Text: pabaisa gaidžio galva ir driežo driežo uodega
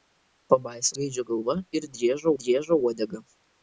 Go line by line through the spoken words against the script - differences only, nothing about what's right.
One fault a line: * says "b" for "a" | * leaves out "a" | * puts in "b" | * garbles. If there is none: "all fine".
all fine